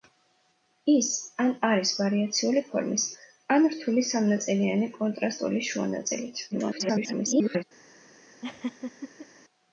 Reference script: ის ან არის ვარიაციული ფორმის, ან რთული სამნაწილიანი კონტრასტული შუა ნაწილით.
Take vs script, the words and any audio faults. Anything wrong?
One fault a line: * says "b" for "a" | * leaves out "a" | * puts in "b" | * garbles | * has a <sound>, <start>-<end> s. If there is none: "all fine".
* garbles
* has a laugh, 8.4-9.3 s